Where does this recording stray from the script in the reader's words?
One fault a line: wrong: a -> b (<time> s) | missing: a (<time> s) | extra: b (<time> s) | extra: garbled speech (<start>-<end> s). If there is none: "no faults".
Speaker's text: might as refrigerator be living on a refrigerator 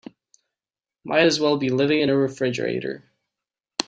wrong: refrigerator -> well (1.4 s)
wrong: on -> in (2.0 s)